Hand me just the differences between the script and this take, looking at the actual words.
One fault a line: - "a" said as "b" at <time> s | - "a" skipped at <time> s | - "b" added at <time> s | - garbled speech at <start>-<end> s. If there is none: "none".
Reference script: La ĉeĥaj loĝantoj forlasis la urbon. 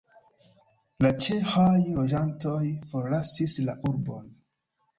none